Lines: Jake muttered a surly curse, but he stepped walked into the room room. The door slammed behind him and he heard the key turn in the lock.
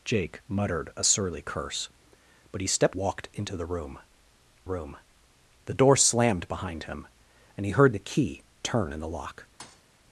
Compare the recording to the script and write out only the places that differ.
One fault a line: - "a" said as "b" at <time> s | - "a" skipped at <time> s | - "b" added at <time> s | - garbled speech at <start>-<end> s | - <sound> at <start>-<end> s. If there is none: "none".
- thud at 9.6-9.8 s